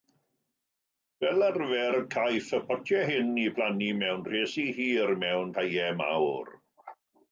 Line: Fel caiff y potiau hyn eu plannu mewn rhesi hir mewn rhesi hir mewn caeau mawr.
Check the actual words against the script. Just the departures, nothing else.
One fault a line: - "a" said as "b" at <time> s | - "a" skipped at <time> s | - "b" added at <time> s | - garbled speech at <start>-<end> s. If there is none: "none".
- "arfer" added at 1.5 s
- "rhesi hir mewn" skipped at 5.5 s